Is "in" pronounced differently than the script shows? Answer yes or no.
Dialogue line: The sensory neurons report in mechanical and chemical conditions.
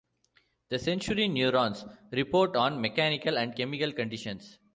yes